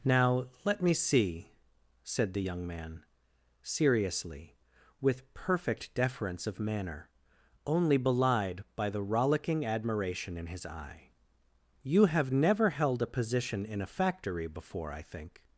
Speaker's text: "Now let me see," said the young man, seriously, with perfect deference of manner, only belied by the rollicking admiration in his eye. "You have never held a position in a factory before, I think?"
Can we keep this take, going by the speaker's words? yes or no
yes